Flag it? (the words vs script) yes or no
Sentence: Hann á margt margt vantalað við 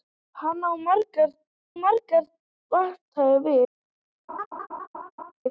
no